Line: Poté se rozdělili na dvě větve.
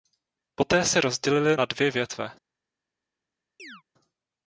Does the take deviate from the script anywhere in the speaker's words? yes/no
no